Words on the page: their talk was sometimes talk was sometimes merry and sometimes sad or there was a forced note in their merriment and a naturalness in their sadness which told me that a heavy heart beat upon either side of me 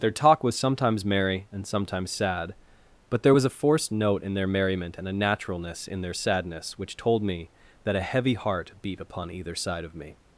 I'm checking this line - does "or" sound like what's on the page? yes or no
no